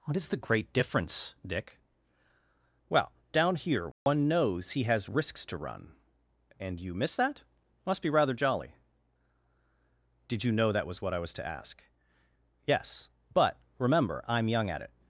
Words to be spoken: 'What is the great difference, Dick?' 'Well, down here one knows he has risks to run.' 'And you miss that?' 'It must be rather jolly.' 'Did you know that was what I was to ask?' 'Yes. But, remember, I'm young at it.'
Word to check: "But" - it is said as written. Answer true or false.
true